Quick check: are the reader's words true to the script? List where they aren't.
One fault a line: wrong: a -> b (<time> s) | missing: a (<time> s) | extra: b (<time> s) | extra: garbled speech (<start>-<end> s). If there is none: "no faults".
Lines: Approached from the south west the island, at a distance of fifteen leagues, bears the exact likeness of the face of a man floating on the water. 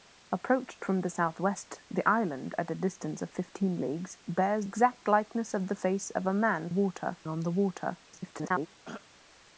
missing: the (4.7 s)
wrong: floating -> water (6.7 s)
extra: garbled speech (8.1-8.7 s)